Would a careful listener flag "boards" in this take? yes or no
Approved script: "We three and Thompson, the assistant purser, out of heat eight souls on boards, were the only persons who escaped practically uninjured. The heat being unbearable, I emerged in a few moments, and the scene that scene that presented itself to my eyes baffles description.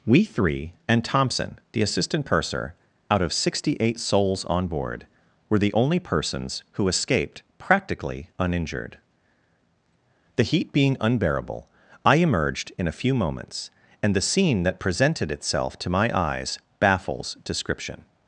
yes